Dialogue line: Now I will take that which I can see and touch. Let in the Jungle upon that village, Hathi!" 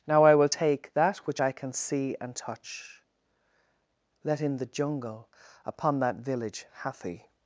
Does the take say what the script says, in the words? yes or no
yes